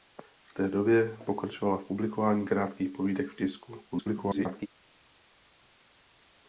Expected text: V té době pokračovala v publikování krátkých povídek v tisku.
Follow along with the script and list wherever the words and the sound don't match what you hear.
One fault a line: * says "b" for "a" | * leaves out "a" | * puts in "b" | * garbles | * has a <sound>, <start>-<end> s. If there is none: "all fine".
* garbles